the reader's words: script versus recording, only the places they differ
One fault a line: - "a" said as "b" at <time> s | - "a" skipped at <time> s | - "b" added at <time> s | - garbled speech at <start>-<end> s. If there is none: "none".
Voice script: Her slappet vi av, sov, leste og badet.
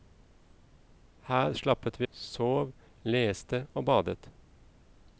- "av" skipped at 2.1 s